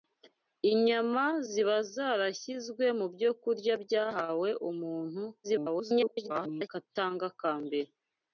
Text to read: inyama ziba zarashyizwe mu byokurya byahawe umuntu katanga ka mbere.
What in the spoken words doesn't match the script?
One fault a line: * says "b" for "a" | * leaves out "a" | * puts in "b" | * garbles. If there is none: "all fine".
* garbles